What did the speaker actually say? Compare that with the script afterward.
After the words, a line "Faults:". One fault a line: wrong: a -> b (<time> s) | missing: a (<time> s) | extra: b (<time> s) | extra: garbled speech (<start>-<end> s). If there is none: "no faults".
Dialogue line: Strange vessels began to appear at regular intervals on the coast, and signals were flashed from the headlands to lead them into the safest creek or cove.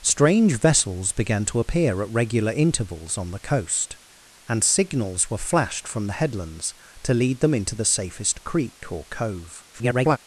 Strange vessels began to appear at regular intervals on the coast, and signals were flashed from the headlands to lead them into the safest creek or cove. [garbled]
Faults:
extra: garbled speech (9.7-10.2 s)